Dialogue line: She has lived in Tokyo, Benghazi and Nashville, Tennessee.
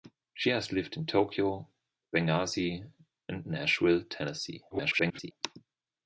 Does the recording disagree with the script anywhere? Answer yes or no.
yes